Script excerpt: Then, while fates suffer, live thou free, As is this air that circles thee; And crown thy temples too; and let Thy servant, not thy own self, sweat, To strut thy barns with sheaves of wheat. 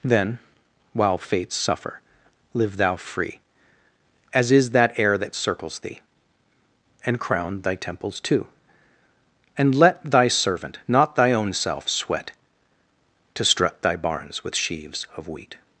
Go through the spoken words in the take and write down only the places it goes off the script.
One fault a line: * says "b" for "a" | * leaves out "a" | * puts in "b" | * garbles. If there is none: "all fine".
* says "that" for "this"